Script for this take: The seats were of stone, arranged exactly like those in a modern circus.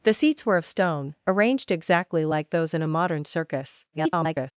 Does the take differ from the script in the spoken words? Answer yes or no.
yes